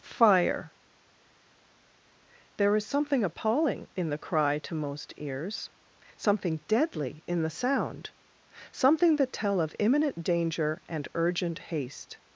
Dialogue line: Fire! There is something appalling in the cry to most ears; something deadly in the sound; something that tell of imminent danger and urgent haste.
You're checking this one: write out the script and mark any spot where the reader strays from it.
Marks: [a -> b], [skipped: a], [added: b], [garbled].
Fire! There is something appalling in the cry to most ears; something deadly in the sound; something that tell of imminent danger and urgent haste.